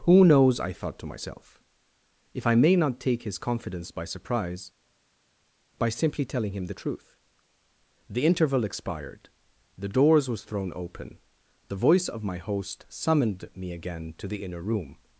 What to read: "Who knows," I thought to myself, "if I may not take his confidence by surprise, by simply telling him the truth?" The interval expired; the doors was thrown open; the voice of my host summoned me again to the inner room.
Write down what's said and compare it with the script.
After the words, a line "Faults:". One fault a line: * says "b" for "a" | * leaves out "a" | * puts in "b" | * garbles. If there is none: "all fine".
"Who knows," I thought to myself, "if I may not take his confidence by surprise, by simply telling him the truth?" The interval expired; the doors was thrown open; the voice of my host summoned me again to the inner room.
Faults:
all fine